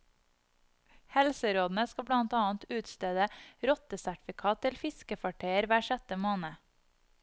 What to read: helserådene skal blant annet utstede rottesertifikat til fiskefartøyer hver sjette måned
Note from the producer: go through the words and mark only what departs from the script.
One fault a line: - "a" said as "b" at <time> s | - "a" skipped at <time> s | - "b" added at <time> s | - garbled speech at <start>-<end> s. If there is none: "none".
none